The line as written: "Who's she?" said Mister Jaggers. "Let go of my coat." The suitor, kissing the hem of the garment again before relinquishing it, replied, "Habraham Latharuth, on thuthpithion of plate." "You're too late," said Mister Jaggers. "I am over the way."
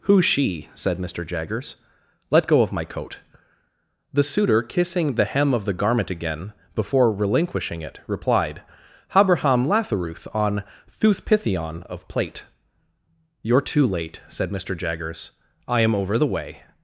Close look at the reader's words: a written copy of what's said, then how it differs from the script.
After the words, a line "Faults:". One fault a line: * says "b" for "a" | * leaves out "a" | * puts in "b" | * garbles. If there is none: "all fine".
"Who's she?" said Mister Jaggers. "Let go of my coat." The suitor, kissing the hem of the garment again before relinquishing it, replied, "Habraham Latharuth, on thuthpithion of plate." "You're too late," said Mister Jaggers. "I am over the way."
Faults:
all fine